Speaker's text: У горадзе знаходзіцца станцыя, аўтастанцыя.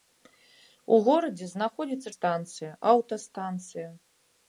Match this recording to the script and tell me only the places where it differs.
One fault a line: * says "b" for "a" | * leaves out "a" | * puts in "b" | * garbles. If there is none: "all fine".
all fine